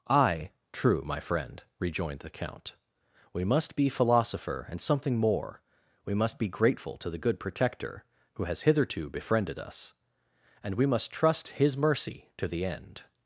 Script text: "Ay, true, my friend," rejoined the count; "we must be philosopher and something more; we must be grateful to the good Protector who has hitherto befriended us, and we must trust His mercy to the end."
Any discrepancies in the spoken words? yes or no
no